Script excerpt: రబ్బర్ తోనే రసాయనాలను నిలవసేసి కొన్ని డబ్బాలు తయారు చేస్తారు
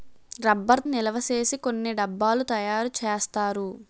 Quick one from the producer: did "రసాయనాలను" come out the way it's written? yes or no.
no